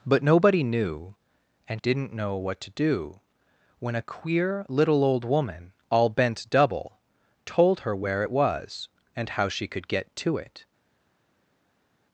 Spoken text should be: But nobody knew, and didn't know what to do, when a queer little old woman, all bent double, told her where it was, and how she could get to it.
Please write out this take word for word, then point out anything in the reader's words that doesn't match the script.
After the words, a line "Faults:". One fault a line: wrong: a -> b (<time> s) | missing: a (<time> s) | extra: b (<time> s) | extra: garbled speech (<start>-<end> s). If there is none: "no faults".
But nobody knew, and didn't know what to do, when a queer little old woman, all bent double, told her where it was, and how she could get to it.
Faults:
no faults